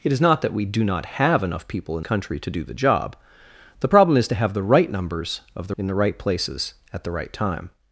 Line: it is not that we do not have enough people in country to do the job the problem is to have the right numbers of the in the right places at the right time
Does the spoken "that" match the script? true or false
true